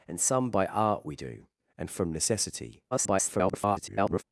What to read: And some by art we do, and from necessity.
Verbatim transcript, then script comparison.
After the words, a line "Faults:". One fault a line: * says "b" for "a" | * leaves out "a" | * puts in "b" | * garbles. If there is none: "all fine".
And some by art we do, and from necessity. [garbled]
Faults:
* garbles